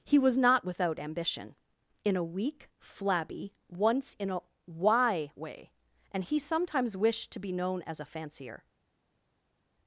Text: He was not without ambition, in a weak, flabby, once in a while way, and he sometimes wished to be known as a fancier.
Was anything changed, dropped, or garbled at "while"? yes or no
yes